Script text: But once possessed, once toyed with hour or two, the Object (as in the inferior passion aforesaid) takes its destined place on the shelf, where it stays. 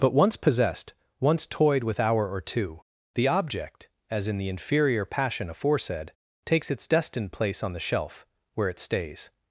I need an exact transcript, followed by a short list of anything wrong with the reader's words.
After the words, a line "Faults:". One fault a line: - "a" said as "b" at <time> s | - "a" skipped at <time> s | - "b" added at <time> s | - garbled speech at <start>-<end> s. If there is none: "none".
But once possessed, once toyed with hour or two, the Object (as in the inferior passion aforesaid) takes its destined place on the shelf, where it stays.
Faults:
none